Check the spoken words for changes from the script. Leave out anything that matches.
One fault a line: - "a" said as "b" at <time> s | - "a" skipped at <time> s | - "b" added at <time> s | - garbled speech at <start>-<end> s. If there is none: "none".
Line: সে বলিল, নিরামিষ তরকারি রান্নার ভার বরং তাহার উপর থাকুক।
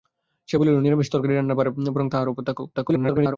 - garbled speech at 2.7-3.4 s